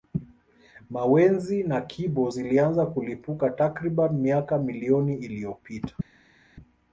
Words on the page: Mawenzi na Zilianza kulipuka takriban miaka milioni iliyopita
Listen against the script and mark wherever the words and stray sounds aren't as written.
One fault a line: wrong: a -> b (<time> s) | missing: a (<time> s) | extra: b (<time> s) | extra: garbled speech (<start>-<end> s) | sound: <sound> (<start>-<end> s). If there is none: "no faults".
extra: Kibo (1.8 s)